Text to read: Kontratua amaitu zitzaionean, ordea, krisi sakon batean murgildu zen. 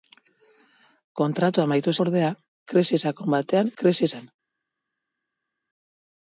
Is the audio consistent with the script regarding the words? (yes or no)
no